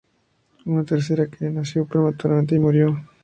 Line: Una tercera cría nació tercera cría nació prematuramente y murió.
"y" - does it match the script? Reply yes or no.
yes